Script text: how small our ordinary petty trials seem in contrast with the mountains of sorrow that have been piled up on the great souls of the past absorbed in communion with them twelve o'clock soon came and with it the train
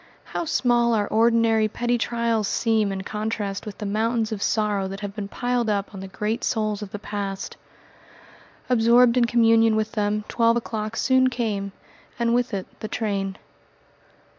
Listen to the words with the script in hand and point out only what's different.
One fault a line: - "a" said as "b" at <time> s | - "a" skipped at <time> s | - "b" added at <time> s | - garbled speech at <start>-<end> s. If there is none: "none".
none